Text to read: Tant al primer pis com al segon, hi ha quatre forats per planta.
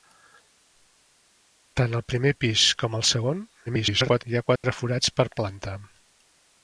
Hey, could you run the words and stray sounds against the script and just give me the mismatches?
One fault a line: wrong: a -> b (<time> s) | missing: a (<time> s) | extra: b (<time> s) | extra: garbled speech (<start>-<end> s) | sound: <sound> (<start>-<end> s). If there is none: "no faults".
extra: garbled speech (3.7-4.2 s)
sound: dropout (4.6-4.6 s)